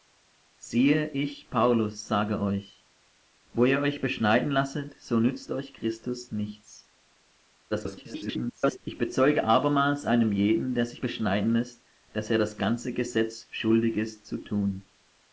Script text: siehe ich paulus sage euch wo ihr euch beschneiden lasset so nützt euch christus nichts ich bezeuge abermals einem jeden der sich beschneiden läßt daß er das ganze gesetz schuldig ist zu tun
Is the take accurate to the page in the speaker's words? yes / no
no